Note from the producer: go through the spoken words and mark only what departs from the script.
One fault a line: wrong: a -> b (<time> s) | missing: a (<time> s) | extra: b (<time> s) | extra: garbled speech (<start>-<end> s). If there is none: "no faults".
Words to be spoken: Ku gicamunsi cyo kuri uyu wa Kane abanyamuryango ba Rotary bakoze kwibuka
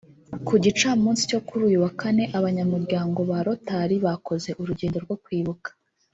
extra: urugendo rwo (4.6 s)